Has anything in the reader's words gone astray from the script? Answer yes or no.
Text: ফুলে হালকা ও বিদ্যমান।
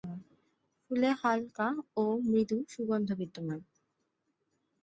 yes